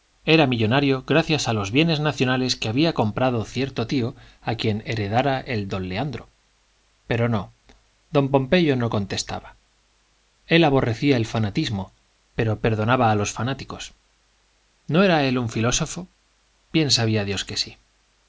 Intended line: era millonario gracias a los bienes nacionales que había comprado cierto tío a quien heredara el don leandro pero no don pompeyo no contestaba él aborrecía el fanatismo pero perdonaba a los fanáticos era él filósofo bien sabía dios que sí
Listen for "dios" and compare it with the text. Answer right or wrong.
right